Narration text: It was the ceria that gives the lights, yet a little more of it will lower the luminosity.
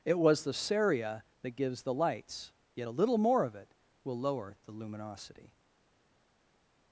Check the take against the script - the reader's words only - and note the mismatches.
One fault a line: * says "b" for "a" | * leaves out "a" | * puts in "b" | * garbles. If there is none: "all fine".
all fine